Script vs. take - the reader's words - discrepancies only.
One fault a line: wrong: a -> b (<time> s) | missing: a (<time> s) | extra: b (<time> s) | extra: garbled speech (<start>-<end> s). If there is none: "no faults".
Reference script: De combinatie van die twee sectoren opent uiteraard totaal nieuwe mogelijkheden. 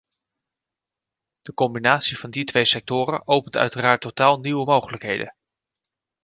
no faults